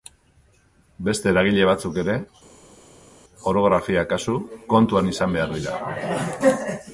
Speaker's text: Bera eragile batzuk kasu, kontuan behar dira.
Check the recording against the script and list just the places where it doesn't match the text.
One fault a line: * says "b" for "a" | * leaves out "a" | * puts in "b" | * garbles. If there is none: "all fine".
* says "Beste" for "Bera"
* puts in "ere orografia"
* puts in "izan"